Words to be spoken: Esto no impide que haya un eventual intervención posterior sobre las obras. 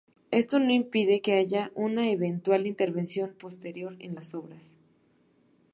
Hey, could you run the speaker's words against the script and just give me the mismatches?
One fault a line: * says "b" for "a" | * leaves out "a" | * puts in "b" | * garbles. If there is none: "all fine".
* says "una" for "un"
* says "en" for "sobre"